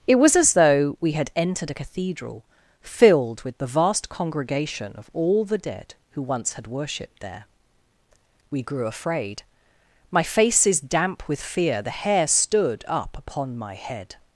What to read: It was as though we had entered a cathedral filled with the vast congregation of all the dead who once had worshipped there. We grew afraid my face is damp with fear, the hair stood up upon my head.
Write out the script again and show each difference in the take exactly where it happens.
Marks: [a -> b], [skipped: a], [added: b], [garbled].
It was as though we had entered a cathedral filled with the vast congregation of all the dead who once had worshipped there. We grew afraid my face is damp with fear, the hair stood up upon my head.